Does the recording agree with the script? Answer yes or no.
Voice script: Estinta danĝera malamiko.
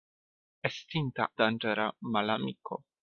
yes